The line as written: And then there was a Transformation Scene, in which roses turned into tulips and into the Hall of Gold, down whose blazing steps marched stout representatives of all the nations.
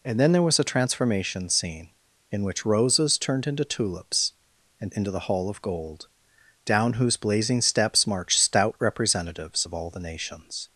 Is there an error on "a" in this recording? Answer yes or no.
no